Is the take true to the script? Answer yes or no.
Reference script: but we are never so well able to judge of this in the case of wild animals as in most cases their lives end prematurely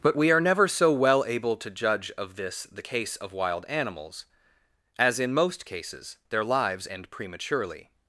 no